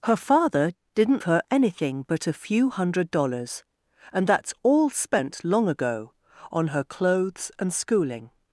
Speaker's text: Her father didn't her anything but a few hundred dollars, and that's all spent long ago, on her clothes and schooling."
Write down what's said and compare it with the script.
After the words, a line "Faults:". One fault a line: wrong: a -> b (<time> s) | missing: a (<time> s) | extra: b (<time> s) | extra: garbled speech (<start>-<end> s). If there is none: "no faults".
Her father didn't her anything but a few hundred dollars, and that's all spent long ago, on her clothes and schooling."
Faults:
no faults